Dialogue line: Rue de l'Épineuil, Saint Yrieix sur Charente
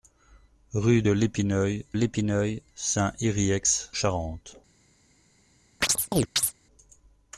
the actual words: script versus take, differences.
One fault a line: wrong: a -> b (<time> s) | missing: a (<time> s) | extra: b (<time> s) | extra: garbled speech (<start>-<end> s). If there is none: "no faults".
extra: l'Épineuil (1.9 s)
missing: sur (3.9 s)